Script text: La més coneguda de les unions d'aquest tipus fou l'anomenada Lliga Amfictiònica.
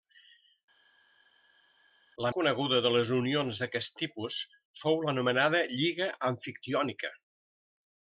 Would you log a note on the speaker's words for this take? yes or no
yes